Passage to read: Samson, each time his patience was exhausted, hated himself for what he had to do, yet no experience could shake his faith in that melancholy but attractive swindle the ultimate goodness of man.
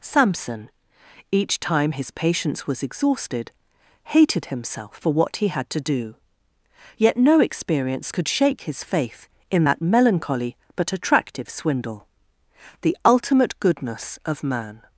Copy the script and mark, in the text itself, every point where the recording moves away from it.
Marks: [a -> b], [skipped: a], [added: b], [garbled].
Samson, each time his patience was exhausted, hated himself for what he had to do, yet no experience could shake his faith in that melancholy but attractive swindle the ultimate goodness of man.